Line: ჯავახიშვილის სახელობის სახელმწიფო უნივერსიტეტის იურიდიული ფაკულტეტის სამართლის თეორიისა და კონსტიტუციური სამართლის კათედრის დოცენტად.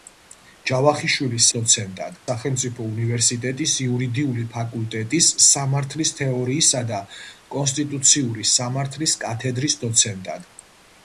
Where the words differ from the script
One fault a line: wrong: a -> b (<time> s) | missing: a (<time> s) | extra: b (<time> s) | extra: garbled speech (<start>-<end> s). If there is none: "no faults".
wrong: სახელობის -> დოცენტად (1.6 s)